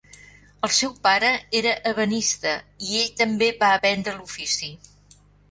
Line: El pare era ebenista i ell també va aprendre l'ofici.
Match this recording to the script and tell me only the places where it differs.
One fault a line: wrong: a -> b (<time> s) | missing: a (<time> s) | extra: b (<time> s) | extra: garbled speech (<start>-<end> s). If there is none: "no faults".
extra: seu (0.8 s)